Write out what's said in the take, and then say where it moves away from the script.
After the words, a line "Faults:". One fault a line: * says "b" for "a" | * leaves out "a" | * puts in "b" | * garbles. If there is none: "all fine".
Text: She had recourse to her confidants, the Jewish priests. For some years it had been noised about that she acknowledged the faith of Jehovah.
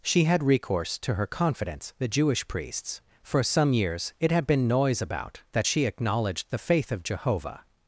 She had recourse to her confidants, the Jewish priests. For some years it had been noise about that she acknowledged the faith of Jehovah.
Faults:
* says "noise" for "noised"